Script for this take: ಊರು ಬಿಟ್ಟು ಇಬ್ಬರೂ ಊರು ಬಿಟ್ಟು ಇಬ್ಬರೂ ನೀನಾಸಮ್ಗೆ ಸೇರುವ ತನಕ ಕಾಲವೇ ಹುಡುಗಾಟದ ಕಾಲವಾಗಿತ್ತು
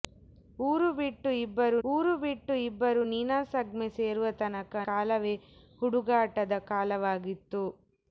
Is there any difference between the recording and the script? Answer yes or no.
no